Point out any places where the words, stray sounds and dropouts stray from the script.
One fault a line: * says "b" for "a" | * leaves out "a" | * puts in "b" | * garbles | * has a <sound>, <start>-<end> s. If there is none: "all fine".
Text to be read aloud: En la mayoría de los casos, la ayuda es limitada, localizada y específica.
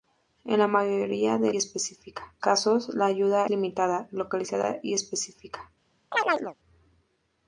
* says "específica" for "los"
* leaves out "es"
* has a chirp, 6.1-6.5 s